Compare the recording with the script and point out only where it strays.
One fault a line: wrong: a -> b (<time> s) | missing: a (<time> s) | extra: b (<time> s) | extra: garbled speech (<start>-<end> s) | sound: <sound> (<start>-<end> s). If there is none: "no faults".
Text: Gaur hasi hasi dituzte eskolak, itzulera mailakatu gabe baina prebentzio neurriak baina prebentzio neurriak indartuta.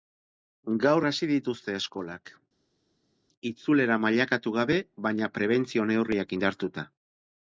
missing: hasi (1.3 s)
missing: baina prebentzio neurriak (6.4 s)